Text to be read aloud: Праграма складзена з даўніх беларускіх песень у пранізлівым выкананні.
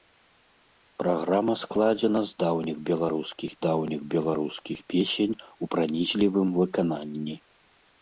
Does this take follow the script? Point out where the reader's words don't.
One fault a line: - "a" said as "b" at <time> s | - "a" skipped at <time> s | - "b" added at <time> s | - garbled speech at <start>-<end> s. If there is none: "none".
- "даўніх беларускіх" added at 3.7 s